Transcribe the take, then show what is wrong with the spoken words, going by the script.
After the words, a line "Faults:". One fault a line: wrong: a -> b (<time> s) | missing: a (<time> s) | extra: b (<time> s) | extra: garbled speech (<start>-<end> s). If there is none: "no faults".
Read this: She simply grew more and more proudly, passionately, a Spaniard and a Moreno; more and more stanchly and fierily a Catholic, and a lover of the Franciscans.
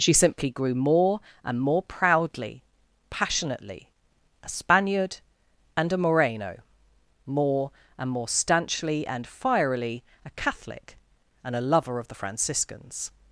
She simply grew more and more proudly, passionately, a Spaniard and a Moreno; more and more stanchly and fierily a Catholic, and a lover of the Franciscans.
Faults:
no faults